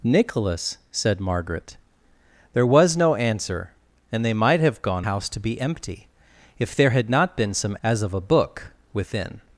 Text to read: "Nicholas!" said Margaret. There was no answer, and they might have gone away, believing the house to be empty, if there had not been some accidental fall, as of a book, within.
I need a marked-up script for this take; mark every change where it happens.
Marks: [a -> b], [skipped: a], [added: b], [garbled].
"Nicholas!" said Margaret. There was no answer, and they might have gone [skipped: away, believing the] house to be empty, if there had not been some [skipped: accidental fall,] as of a book, within.